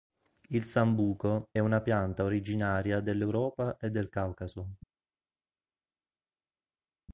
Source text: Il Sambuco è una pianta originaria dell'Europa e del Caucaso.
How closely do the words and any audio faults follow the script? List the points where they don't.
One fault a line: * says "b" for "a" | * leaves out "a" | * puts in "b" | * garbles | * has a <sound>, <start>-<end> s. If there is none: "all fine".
* leaves out "è"